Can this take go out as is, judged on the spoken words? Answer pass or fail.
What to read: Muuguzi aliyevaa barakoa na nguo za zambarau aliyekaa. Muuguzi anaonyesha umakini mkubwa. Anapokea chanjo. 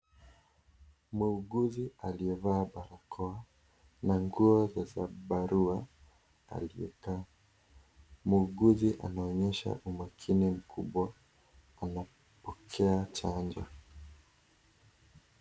pass